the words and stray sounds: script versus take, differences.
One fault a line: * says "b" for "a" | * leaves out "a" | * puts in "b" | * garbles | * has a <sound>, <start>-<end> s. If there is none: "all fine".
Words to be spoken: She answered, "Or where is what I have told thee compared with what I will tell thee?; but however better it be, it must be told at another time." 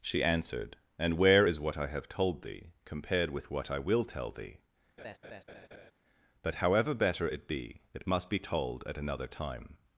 * says "And" for "Or"
* has a laugh, 5.0-5.9 s